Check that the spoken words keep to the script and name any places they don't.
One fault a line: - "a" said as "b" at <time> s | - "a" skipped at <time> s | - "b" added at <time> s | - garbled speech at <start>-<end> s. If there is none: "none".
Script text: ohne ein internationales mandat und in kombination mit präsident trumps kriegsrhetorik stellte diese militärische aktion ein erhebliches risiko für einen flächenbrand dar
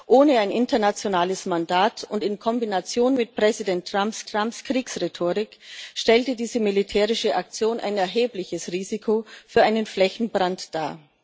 - "trumps" added at 4.3 s